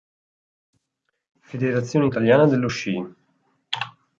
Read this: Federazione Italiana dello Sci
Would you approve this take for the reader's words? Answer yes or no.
yes